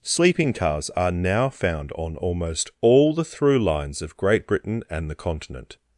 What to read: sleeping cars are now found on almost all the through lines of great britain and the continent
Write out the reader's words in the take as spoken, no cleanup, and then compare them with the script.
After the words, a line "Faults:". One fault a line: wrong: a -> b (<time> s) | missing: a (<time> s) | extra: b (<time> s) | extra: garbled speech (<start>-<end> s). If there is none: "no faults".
sleeping cars are now found on almost all the through lines of great britain and the continent
Faults:
no faults